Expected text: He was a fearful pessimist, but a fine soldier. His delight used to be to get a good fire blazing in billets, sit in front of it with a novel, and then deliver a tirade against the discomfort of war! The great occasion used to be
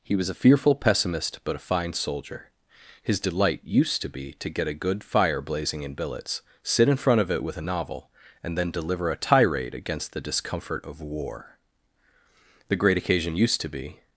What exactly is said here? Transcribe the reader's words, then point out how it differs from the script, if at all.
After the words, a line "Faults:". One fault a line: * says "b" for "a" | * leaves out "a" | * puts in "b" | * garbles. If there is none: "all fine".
He was a fearful pessimist, but a fine soldier. His delight used to be to get a good fire blazing in billets, sit in front of it with a novel, and then deliver a tirade against the discomfort of war! The great occasion used to be
Faults:
all fine